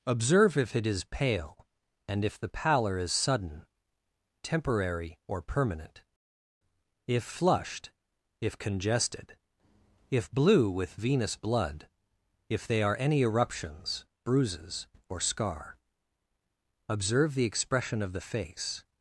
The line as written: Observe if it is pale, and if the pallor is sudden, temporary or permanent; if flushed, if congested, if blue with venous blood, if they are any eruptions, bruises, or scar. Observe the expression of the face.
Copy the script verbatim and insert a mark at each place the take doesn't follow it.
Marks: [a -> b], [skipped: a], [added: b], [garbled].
Observe if it is pale, and if the pallor is sudden, temporary or permanent; if flushed, if congested, if blue with venous blood, if they are any eruptions, bruises, or scar. Observe the expression of the face.